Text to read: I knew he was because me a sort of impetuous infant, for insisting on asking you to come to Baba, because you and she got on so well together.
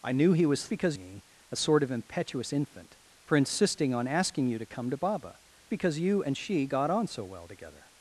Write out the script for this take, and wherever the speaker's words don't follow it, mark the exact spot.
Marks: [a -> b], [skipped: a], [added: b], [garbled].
I knew he was because me a sort of impetuous infant, for insisting on asking you to come to Baba, because you and she got on so well together.